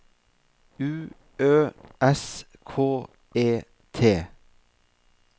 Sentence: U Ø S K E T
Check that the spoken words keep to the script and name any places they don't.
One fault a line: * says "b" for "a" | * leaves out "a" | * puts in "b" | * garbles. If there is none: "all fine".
all fine